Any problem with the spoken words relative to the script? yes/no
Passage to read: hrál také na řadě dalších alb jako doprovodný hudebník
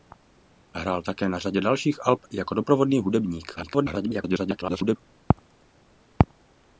yes